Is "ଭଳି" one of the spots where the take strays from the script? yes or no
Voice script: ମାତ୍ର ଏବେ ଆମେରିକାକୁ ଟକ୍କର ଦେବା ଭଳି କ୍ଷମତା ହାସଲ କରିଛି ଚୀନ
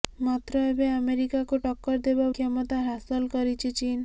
yes